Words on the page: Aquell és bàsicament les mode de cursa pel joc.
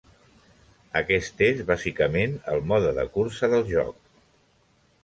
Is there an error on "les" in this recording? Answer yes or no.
yes